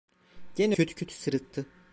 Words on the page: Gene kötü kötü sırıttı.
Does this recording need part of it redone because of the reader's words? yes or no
no